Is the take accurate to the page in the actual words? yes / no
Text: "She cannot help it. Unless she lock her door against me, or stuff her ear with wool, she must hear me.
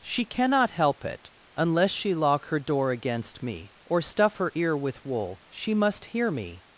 yes